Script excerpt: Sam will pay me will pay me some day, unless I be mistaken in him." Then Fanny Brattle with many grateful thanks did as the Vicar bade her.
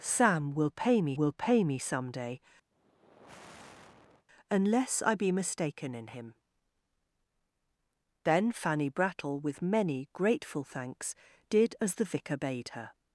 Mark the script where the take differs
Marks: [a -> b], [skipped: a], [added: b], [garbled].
Sam will pay me will pay me some day, unless I be mistaken in him." Then Fanny Brattle with many grateful thanks did as the Vicar bade her.